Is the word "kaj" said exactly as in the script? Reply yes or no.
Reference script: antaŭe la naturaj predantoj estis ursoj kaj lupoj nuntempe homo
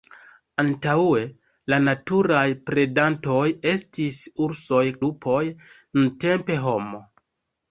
no